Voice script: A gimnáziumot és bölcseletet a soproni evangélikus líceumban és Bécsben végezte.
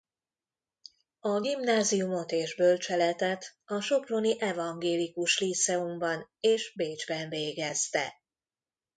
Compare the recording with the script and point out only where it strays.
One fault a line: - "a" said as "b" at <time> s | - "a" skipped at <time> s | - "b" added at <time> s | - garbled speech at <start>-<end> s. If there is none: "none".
none